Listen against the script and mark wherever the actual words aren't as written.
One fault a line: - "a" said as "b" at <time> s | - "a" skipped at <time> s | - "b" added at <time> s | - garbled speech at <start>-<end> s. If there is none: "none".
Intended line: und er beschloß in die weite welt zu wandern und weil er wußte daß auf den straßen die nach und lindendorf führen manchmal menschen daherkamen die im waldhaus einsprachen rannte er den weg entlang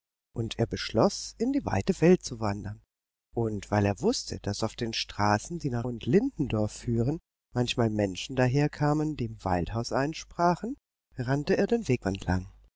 none